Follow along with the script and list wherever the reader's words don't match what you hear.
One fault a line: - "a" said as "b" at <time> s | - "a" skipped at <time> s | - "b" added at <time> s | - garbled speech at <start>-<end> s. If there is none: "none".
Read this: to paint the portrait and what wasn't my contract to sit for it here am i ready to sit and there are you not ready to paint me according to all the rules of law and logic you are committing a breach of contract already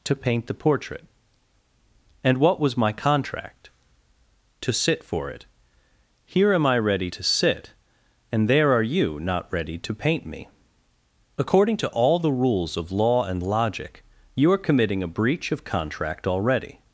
- "wasn't" said as "was" at 2.6 s